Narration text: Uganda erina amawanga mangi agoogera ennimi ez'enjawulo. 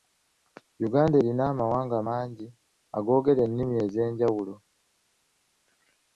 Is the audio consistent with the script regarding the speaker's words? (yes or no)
yes